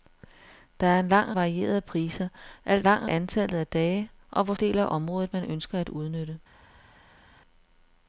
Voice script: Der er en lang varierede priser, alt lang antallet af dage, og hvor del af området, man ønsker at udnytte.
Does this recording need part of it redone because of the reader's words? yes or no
no